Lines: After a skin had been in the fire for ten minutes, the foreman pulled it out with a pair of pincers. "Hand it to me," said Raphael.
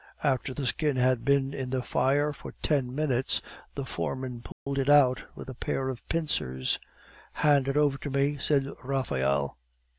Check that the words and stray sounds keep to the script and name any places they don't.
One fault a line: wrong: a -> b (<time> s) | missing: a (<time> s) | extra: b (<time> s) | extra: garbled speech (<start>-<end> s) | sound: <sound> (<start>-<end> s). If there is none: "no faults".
wrong: a -> the (0.5 s)
sound: dropout (4.5-4.7 s)
extra: over (7.8 s)